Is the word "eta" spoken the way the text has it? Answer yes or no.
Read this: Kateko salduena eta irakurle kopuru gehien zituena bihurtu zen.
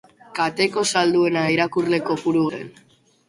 no